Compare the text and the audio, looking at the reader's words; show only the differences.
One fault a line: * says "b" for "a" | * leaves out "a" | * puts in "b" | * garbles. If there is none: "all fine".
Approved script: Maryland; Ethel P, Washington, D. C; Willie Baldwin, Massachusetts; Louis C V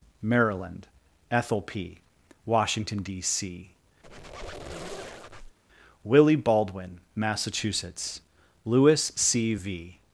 all fine